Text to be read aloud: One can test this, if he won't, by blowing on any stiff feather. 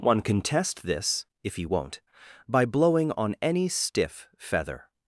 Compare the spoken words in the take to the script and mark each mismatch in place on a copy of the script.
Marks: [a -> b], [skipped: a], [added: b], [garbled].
One can test this, if he won't, by blowing on any stiff feather.